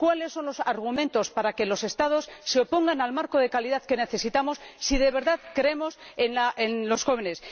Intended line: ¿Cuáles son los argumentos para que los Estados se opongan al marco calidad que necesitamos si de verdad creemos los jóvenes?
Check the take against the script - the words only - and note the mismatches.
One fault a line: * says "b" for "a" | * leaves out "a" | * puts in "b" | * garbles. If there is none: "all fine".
* puts in "de"
* puts in "en"